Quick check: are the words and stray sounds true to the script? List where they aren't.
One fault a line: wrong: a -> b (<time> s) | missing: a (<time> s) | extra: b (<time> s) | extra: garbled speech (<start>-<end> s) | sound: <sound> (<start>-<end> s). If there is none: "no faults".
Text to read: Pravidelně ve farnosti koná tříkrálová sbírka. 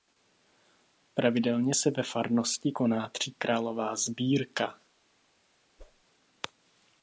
extra: se (1.7 s)
sound: whoosh (5.8-6.0 s)